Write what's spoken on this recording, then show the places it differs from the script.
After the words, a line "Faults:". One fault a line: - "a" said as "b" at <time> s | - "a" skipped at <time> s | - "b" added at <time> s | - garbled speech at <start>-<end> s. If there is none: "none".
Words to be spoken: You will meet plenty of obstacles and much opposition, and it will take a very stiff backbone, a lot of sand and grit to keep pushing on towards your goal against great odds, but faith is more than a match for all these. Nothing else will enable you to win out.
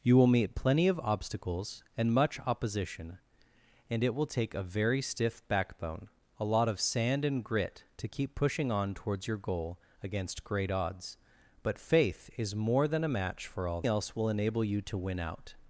You will meet plenty of obstacles and much opposition, and it will take a very stiff backbone, a lot of sand and grit to keep pushing on towards your goal against great odds, but faith is more than a match for all else will enable you to win out.
Faults:
- "these Nothing" skipped at 13.8 s